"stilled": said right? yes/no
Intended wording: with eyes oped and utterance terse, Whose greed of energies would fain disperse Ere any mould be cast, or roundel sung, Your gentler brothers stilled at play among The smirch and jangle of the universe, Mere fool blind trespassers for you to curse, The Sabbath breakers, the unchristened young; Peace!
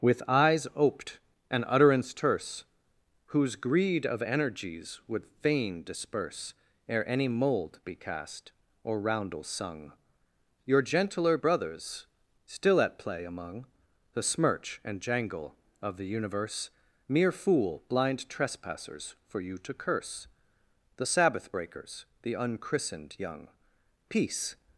no